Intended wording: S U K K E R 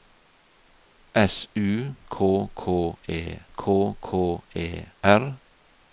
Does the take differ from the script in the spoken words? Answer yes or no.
yes